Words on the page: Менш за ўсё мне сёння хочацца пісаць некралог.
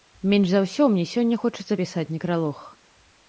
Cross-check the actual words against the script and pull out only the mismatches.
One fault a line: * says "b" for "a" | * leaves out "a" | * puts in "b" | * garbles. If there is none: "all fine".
all fine